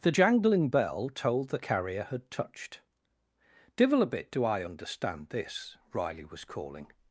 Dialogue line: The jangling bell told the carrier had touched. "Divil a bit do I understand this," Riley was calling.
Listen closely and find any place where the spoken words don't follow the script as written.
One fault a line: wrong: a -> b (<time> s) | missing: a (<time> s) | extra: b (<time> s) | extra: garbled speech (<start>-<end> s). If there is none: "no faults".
no faults